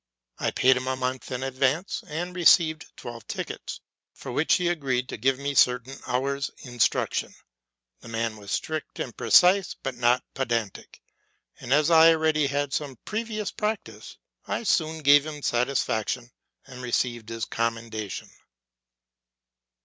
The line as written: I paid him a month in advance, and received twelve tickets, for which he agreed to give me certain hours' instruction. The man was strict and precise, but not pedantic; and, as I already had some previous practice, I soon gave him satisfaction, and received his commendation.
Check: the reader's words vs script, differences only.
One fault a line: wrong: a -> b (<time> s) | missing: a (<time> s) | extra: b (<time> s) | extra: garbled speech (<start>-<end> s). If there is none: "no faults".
no faults